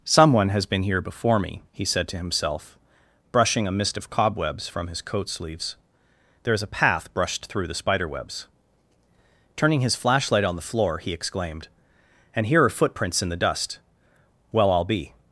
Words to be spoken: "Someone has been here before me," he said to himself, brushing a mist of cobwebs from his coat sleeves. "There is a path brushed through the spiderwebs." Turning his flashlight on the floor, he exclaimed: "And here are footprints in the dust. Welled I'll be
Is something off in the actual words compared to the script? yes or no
yes